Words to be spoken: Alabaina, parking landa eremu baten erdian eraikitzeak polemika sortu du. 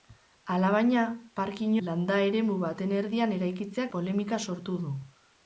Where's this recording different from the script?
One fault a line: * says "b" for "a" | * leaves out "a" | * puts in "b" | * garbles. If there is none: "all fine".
all fine